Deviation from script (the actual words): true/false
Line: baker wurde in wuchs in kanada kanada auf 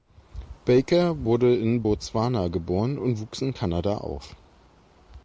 true